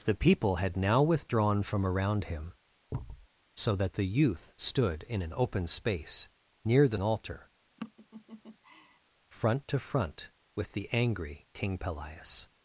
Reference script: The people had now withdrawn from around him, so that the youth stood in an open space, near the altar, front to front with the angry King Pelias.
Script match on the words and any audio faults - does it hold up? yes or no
no